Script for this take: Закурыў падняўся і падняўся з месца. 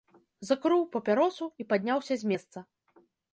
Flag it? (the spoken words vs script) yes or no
yes